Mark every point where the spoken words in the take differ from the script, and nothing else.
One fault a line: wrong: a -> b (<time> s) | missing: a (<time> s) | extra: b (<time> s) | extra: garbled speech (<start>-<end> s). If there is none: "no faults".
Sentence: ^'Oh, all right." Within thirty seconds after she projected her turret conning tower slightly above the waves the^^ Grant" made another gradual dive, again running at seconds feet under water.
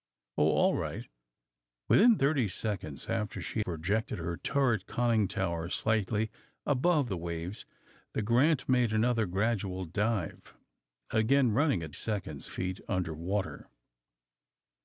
no faults